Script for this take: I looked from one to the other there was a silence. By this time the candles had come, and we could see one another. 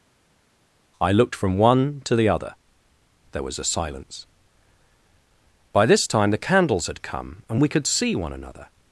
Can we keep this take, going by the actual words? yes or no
yes